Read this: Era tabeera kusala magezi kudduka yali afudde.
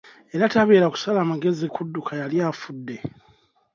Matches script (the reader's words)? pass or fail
pass